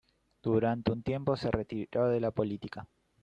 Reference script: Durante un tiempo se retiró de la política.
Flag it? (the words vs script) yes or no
no